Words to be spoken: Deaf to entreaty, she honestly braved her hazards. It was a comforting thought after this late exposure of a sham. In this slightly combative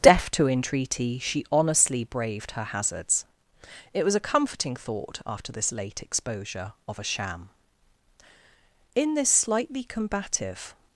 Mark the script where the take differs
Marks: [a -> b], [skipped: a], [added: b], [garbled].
Deaf to entreaty, she honestly braved her hazards. It was a comforting thought after this late exposure of a sham. In this slightly combative